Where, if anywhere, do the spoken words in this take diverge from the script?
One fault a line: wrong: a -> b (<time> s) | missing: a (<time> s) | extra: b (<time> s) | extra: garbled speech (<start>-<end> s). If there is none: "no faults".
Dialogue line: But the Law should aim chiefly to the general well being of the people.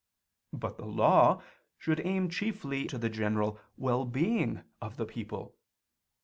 no faults